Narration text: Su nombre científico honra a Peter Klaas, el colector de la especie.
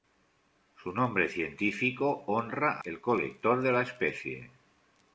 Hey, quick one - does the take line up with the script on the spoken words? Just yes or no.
no